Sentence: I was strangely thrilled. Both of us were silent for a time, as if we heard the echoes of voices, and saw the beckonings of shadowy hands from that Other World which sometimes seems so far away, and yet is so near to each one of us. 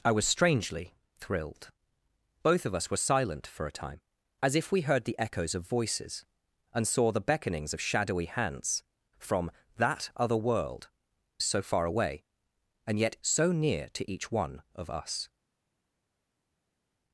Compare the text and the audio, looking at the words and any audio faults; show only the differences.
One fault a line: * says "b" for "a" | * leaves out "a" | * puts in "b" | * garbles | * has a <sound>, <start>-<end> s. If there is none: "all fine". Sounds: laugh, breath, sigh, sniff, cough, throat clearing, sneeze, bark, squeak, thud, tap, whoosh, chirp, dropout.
* leaves out "which sometimes seems"
* leaves out "is"